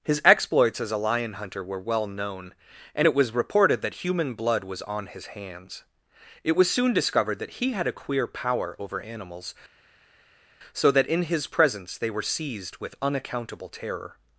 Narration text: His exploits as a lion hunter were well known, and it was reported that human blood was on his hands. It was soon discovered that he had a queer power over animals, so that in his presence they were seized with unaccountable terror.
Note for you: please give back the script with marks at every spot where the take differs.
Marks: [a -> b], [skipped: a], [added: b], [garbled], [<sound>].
His exploits as a lion hunter were well known, and it was reported that human blood was on his hands. It was soon discovered that he had a queer power over animals, so that in his presence they were seized with unaccountable terror.